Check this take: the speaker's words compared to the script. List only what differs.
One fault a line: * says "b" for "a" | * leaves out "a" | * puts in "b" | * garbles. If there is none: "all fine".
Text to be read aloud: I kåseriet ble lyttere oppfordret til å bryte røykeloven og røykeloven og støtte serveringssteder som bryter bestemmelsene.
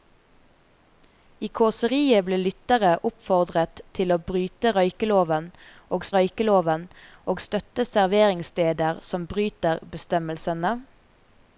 all fine